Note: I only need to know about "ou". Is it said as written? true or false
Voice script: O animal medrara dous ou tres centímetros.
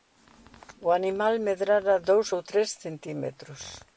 true